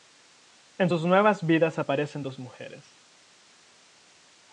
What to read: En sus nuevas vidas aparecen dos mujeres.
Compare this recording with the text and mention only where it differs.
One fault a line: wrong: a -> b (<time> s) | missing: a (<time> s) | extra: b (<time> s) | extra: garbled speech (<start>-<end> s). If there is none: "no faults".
no faults